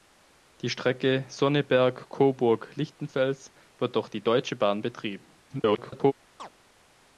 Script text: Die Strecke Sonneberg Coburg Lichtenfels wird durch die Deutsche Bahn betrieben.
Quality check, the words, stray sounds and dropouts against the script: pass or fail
fail